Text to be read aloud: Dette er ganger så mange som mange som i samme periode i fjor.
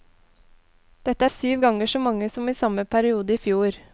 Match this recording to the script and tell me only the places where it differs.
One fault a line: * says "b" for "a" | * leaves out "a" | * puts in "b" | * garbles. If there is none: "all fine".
* puts in "syv"
* leaves out "mange som"